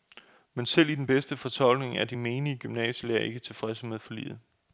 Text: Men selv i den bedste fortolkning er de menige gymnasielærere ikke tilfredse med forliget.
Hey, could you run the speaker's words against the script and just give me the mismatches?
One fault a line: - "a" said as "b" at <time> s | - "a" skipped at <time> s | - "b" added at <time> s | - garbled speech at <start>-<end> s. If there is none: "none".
none